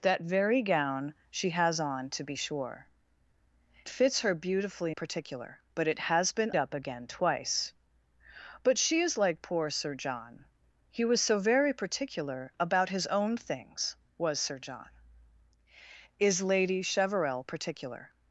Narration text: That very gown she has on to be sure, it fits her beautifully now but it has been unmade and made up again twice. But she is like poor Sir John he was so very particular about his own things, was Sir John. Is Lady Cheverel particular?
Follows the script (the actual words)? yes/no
no